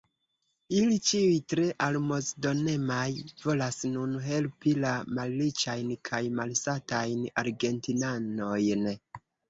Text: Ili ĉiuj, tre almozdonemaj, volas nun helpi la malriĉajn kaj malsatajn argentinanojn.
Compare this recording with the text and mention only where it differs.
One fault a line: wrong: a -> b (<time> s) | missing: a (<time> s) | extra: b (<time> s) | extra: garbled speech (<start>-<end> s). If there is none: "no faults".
no faults